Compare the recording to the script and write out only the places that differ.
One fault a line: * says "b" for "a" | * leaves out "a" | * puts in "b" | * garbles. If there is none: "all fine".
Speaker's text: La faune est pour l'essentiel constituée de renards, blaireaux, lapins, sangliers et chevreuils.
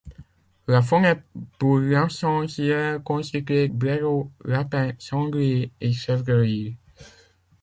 * leaves out "de renards"